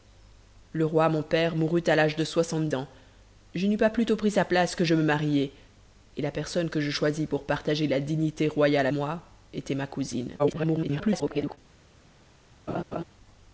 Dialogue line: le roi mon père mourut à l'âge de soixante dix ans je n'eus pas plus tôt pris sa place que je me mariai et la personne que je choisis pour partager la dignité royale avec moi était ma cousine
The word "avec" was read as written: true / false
false